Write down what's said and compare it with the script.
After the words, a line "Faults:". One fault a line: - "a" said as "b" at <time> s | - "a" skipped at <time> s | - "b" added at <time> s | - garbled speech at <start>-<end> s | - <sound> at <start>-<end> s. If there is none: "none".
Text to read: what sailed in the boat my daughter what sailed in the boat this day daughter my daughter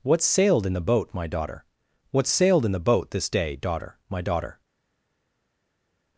what sailed in the boat my daughter what sailed in the boat this day daughter my daughter
Faults:
none